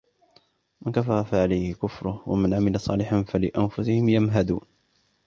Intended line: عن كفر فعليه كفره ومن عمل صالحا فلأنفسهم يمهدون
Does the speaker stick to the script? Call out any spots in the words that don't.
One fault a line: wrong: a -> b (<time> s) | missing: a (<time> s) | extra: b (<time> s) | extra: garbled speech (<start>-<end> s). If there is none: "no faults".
wrong: عن -> من (0.8 s)